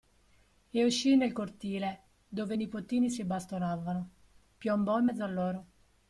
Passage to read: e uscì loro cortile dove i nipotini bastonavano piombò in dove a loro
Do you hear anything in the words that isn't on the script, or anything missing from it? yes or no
yes